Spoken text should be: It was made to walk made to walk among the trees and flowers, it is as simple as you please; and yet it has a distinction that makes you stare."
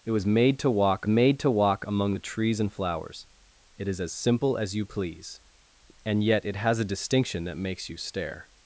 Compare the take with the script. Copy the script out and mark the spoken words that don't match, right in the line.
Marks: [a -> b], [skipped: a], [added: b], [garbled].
It was made to walk made to walk among the trees and flowers, it is as simple as you please; and yet it has a distinction that makes you stare."